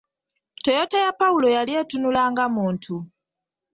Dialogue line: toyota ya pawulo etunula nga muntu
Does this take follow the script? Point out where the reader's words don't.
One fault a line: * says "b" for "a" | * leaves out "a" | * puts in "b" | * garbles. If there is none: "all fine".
* puts in "yali"